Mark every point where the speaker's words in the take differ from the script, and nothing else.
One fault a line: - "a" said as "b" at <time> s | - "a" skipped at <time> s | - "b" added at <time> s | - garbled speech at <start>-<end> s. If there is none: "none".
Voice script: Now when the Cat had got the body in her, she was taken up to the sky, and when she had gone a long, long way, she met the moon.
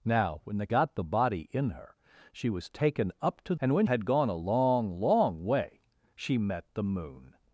- "Cat had" skipped at 0.7 s
- "the sky" skipped at 3.5 s
- "she" skipped at 3.9 s